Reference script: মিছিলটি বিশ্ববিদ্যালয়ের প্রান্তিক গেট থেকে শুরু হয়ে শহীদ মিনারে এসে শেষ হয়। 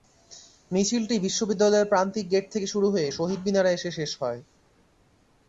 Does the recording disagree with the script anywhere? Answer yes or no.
no